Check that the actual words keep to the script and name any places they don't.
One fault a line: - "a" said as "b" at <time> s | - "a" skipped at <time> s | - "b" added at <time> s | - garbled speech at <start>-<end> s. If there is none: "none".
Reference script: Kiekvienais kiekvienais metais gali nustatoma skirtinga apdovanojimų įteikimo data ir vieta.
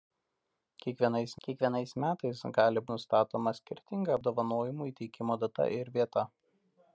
none